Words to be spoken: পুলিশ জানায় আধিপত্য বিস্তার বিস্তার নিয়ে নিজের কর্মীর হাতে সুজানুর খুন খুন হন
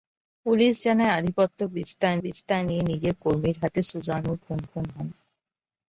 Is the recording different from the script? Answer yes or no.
no